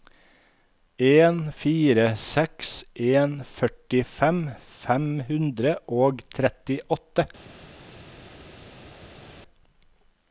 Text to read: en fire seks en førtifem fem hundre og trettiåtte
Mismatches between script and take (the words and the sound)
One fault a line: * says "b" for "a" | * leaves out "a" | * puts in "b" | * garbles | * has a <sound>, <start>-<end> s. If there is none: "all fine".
all fine